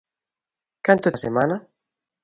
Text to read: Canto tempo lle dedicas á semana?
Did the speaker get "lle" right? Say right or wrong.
wrong